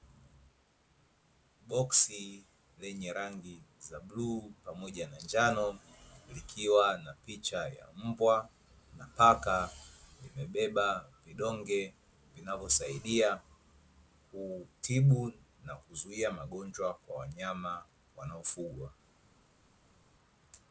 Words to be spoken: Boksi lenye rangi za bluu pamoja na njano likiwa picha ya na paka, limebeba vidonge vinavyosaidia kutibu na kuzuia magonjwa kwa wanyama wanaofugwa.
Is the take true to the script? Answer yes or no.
no